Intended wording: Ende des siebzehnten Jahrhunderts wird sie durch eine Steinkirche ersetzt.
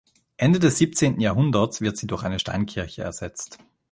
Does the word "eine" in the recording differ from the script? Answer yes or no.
no